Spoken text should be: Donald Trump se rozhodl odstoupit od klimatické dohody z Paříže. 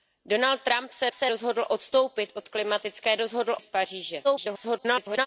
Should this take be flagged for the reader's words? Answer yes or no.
yes